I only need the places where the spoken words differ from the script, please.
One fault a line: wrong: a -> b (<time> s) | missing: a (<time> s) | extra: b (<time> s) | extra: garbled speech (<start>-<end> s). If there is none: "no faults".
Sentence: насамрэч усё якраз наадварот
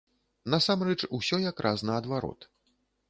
no faults